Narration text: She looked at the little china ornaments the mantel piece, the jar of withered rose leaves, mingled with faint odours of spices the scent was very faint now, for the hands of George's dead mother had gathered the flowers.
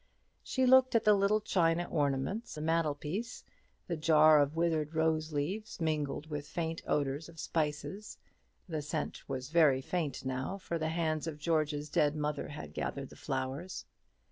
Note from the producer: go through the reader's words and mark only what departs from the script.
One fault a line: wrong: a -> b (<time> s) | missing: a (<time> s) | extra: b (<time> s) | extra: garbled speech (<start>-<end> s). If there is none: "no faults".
no faults